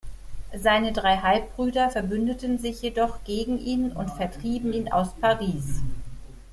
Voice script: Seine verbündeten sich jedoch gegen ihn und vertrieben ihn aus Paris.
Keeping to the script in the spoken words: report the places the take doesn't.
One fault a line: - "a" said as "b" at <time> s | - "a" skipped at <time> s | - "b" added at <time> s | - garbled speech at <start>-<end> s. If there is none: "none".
- "drei Halbbrüder" added at 0.9 s